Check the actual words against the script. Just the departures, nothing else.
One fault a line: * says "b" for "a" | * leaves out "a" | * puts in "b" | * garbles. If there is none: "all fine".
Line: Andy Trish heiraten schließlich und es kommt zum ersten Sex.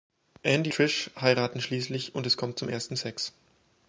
all fine